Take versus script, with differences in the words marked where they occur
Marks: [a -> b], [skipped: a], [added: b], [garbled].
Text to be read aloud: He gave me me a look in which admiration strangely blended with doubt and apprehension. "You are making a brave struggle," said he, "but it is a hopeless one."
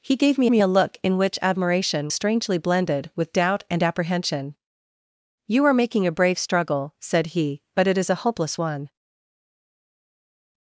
He gave me me a look in which admiration strangely blended with doubt and apprehension. "You are making a brave struggle," said he, "but it is a hopeless one."